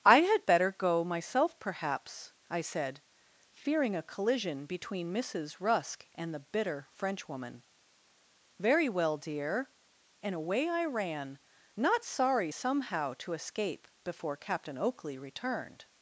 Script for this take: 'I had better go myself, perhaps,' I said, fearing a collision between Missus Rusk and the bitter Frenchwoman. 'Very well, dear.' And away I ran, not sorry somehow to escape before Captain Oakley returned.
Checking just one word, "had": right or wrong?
right